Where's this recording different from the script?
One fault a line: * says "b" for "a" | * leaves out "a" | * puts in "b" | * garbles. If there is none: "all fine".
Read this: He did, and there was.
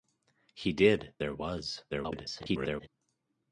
* leaves out "and"
* garbles